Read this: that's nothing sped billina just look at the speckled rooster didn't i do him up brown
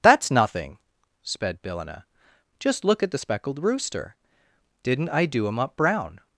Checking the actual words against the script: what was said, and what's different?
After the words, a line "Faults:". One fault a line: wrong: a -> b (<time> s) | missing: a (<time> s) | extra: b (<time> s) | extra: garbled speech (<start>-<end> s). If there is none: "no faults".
that's nothing sped billina just look at the speckled rooster didn't i do him up brown
Faults:
no faults